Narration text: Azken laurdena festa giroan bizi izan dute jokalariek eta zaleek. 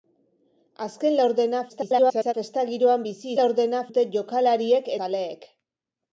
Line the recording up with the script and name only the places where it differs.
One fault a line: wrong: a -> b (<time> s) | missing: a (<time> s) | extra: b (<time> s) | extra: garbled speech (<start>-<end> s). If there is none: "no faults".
extra: garbled speech (1.7-2.3 s)
wrong: izan -> laurdena (3.4 s)
missing: eta (4.9 s)